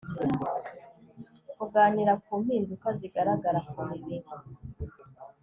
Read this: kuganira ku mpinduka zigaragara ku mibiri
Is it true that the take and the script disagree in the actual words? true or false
false